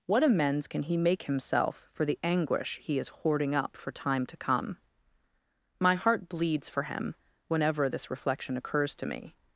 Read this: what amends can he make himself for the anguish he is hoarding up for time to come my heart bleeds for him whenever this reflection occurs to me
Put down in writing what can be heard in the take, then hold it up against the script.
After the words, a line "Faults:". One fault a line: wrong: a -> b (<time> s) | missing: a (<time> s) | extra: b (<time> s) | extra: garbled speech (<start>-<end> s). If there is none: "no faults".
what amends can he make himself for the anguish he is hoarding up for time to come my heart bleeds for him whenever this reflection occurs to me
Faults:
no faults